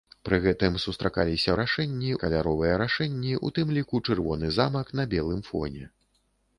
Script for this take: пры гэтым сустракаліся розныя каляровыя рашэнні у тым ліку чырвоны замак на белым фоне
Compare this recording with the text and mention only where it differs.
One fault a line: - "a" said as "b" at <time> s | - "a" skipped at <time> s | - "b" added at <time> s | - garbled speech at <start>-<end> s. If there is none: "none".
- "розныя" said as "рашэнні" at 1.6 s